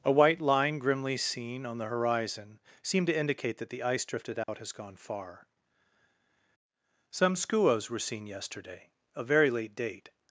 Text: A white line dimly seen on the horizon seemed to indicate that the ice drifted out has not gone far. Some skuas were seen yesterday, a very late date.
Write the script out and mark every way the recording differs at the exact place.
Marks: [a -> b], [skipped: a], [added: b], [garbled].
A white line [dimly -> grimly] seen on the horizon seemed to indicate that the ice drifted out has [skipped: not] gone far. Some skuas were seen yesterday, a very late date.